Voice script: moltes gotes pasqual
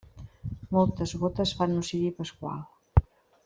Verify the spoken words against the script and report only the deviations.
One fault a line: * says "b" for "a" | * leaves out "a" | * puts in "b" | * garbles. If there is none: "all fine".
* puts in "fan un ciri"